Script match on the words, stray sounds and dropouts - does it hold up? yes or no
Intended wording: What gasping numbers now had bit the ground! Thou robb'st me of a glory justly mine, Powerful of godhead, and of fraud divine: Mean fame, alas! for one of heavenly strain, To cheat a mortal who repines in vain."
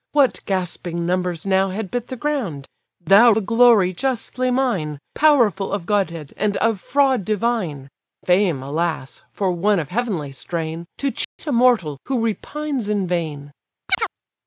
no